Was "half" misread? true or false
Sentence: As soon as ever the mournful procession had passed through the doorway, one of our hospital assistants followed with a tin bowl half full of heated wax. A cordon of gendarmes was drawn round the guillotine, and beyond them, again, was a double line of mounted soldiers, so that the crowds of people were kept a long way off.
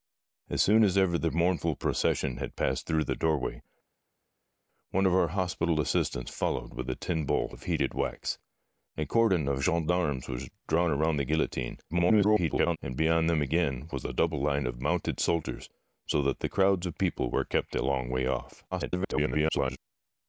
true